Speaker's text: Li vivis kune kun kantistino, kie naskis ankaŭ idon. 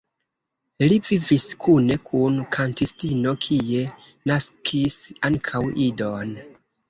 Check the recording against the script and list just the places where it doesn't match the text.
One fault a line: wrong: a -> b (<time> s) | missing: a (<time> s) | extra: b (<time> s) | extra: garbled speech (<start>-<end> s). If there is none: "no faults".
no faults